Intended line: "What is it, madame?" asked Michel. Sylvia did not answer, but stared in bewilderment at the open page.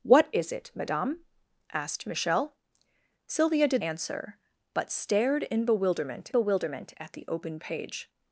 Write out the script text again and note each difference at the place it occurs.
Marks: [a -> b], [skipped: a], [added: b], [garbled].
"What is it, madame?" asked Michel. Sylvia did [skipped: not] answer, but stared in bewilderment [added: bewilderment] at the open page.